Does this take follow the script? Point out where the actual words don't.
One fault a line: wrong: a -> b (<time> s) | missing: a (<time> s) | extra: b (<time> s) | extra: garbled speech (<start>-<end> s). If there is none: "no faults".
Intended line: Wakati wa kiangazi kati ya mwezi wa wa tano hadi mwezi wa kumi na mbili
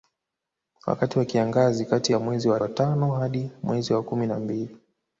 no faults